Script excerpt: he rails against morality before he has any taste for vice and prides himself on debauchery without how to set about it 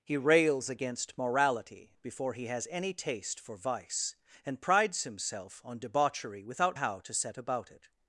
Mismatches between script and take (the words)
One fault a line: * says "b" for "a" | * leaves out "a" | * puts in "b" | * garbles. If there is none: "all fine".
all fine